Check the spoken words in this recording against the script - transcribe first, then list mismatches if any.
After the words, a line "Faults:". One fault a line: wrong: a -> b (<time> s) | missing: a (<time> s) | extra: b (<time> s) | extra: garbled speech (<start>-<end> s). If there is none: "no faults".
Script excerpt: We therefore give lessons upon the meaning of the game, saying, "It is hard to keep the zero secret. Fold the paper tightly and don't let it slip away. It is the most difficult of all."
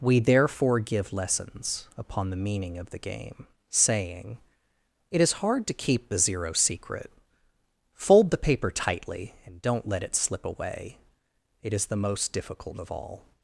We therefore give lessons upon the meaning of the game, saying, "It is hard to keep the zero secret. Fold the paper tightly and don't let it slip away. It is the most difficult of all."
Faults:
no faults